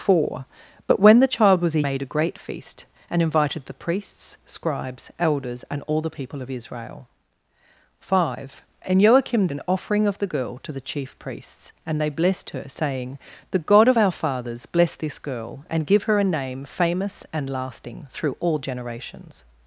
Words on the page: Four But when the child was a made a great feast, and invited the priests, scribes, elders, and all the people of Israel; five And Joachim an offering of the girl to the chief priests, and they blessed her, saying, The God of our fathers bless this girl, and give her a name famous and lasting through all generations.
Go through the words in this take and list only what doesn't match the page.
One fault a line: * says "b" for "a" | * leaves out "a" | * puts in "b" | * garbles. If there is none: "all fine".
all fine